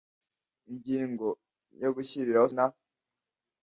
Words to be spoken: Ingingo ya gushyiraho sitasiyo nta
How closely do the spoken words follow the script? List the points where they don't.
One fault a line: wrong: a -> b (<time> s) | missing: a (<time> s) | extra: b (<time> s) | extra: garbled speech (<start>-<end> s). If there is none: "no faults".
missing: sitasiyo (2.5 s)